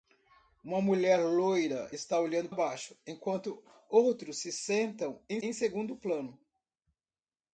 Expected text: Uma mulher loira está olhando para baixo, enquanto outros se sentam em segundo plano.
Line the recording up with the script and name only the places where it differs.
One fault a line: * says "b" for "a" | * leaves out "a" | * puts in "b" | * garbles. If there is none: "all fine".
* leaves out "para"
* puts in "em"